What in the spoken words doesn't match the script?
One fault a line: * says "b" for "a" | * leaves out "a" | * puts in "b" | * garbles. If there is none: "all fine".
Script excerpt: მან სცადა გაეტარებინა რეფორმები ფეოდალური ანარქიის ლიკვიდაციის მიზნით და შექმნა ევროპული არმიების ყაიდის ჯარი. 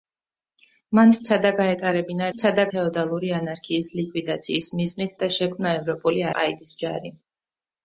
* says "სცადა" for "რეფორმები"
* leaves out "არმიების"